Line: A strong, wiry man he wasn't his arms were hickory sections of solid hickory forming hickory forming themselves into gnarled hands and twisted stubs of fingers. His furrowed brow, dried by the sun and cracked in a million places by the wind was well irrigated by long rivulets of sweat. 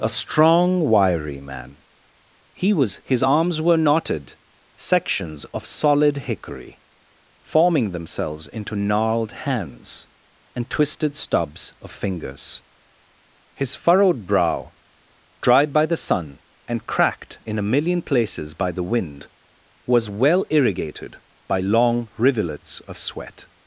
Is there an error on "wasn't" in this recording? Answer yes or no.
yes